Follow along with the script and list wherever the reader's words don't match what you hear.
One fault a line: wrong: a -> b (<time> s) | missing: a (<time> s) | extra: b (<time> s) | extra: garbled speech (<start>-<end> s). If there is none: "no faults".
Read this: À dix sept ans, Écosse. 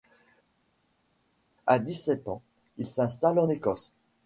extra: il s'installe en (2.8 s)